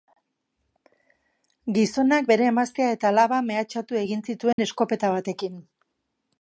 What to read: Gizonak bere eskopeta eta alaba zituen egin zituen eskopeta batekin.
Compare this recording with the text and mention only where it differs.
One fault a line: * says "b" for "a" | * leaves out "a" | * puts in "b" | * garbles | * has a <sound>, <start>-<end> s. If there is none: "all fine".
* says "emaztea" for "eskopeta"
* says "mehatxatu" for "zituen"
* has a dropout, 4.5-4.6 s